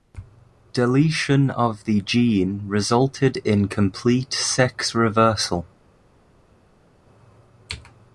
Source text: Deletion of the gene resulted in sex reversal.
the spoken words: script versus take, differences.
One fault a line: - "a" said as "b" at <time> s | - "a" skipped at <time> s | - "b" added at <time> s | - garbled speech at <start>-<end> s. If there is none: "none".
- "complete" added at 3.7 s